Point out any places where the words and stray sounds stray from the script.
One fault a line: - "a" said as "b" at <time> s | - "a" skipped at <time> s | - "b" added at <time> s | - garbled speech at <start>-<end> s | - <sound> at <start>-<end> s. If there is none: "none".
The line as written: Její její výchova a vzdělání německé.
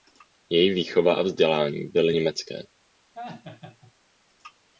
- "její" skipped at 0.7 s
- "byly" added at 1.8 s
- laugh at 3.1-3.9 s